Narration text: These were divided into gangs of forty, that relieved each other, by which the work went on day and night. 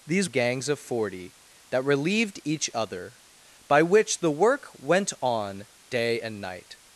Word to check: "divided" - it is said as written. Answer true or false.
false